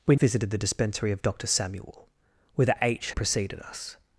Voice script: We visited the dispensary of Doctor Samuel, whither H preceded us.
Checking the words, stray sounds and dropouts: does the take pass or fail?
pass